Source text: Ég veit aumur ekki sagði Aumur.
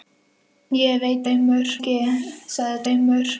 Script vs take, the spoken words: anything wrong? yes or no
no